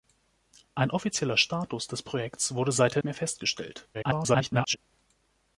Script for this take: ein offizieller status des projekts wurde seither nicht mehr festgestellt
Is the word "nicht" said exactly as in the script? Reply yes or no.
no